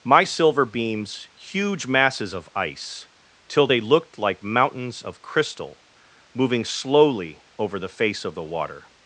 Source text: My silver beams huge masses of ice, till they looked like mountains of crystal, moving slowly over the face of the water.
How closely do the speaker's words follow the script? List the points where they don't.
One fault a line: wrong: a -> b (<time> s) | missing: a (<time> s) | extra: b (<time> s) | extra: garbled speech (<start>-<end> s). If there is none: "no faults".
no faults